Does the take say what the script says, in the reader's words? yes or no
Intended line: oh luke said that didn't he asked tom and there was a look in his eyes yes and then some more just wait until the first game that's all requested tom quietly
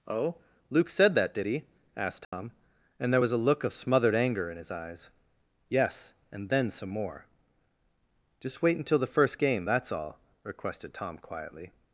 no